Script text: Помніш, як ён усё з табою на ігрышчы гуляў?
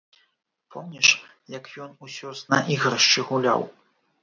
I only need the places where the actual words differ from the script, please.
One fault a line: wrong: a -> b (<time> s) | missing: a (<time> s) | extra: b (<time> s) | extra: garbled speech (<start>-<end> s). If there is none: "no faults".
missing: табою (2.5 s)